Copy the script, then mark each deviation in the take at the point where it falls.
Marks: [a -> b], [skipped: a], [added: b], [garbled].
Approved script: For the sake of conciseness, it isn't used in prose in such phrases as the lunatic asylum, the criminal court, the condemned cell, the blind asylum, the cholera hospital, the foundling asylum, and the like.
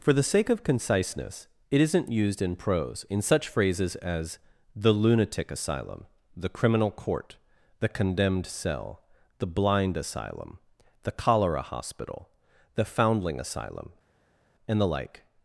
For the sake of conciseness, it isn't used in prose in such phrases as the lunatic asylum, the criminal court, the condemned cell, the blind asylum, the cholera hospital, the foundling asylum, and the like.